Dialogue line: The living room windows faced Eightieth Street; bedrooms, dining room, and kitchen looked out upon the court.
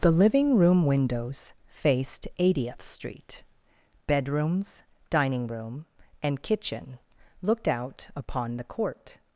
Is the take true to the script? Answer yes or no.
yes